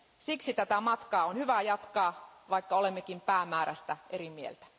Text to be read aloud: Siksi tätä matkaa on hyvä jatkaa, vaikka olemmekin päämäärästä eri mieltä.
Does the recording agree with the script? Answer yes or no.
yes